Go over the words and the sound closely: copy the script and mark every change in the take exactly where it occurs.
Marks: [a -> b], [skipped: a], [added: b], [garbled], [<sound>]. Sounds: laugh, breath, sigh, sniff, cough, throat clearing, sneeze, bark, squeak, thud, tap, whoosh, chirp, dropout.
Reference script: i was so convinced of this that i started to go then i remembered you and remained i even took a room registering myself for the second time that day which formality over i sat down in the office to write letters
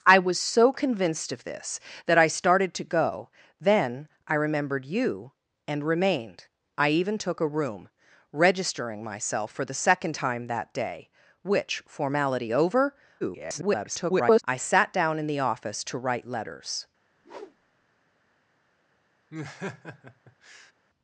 i was so convinced of this that i started to go then i remembered you and remained i even took a room registering myself for the second time that day which formality over [garbled] i sat down in the office to write letters [whoosh] [laugh]